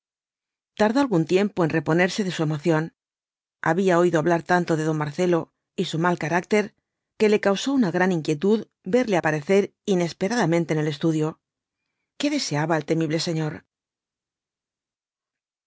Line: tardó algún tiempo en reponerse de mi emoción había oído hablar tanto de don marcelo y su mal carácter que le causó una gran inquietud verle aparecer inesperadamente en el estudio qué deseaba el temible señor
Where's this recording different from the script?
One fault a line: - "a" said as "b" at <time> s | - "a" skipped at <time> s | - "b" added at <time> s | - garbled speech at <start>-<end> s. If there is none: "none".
- "mi" said as "su" at 2.3 s